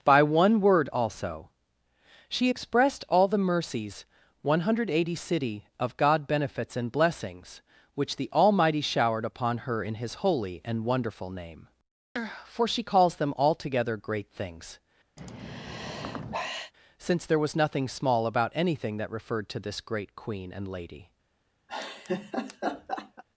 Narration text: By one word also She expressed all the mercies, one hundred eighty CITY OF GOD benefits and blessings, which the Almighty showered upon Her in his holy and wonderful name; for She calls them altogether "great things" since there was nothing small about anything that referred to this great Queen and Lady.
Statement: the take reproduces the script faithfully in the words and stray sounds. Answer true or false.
false